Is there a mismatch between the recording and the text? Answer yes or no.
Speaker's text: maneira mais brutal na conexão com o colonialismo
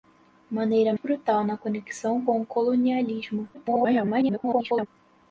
yes